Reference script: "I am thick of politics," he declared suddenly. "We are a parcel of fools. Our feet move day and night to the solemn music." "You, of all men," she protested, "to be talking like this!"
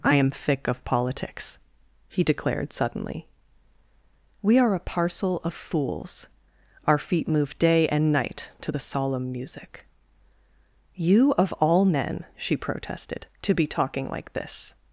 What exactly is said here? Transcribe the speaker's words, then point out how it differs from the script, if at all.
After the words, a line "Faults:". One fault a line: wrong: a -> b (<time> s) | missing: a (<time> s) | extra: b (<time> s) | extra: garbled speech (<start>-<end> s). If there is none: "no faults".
"I am thick of politics," he declared suddenly. "We are a parcel of fools. Our feet move day and night to the solemn music." "You, of all men," she protested, "to be talking like this!"
Faults:
no faults